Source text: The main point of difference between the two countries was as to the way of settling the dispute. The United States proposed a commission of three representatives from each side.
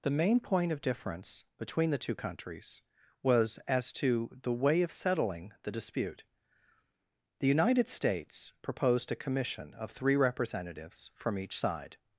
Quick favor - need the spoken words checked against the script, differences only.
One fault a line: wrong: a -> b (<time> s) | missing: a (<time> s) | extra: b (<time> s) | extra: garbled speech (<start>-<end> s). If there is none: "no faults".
no faults